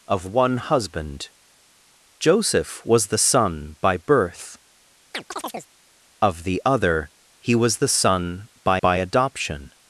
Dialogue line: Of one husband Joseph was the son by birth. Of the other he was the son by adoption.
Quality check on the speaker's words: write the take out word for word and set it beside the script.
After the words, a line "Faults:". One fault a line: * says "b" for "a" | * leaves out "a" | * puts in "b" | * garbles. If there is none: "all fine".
Of one husband Joseph was the son by birth. Of the other he was the son by by adoption.
Faults:
* puts in "by"